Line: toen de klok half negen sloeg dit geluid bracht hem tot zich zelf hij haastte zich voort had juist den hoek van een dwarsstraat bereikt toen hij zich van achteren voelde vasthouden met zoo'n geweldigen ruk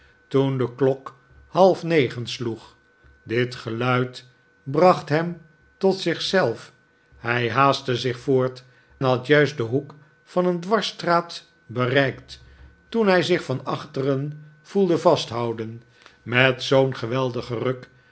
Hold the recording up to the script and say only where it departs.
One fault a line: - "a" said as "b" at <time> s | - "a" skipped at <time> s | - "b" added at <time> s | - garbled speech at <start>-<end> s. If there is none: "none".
none